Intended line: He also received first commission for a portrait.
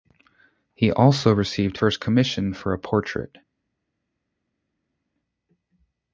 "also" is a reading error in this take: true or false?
false